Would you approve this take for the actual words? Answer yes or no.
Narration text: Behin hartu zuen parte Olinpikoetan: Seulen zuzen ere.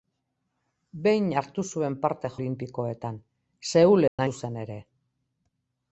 yes